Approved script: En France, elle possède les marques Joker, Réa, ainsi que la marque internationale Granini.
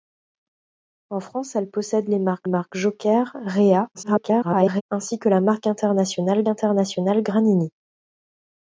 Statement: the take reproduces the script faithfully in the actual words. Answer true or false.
false